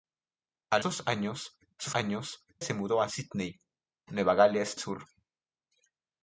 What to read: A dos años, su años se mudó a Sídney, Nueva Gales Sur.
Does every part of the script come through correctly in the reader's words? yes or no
yes